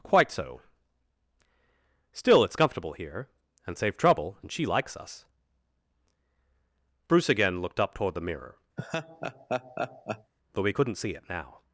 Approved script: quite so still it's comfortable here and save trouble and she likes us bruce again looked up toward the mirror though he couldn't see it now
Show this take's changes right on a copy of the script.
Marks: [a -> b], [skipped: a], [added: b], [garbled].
quite so still it's comfortable here and save trouble and she likes us bruce again looked up toward the mirror though he couldn't see it now